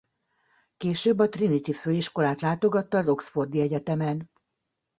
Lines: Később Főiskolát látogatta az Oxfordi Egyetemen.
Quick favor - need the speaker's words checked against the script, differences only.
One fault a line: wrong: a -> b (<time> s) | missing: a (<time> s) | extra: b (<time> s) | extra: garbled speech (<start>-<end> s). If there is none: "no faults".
extra: a Trinity (1.2 s)